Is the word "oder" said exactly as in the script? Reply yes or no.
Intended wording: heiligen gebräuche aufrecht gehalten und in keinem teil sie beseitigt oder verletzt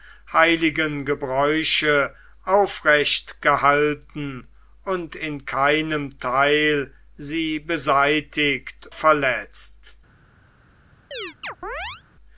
no